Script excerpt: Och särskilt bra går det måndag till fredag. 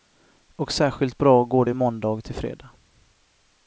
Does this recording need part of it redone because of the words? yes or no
no